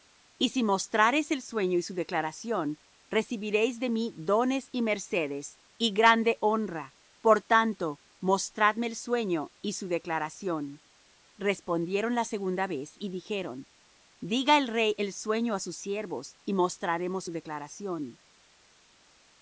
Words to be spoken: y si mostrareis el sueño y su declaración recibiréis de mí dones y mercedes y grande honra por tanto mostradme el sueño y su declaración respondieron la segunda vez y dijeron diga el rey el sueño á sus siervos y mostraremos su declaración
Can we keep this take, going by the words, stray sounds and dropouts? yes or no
yes